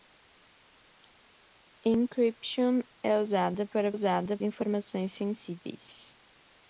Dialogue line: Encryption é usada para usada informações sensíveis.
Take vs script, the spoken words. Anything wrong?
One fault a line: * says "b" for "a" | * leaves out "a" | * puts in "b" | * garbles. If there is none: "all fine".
all fine